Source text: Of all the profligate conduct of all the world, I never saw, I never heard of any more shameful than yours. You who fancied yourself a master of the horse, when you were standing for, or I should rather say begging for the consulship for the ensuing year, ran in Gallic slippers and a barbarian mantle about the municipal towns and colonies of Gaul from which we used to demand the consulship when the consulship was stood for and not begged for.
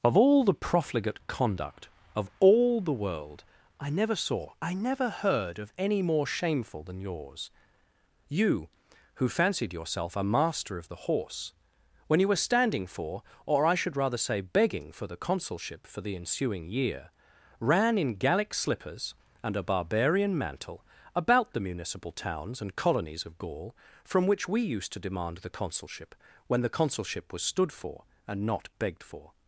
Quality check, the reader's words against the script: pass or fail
pass